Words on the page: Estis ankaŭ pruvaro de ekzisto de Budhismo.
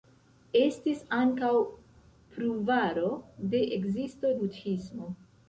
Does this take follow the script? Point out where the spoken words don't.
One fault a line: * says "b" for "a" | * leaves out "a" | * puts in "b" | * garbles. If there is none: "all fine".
* leaves out "de"